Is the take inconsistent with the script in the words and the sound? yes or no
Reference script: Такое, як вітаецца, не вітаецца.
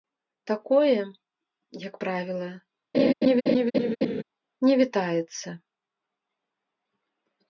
yes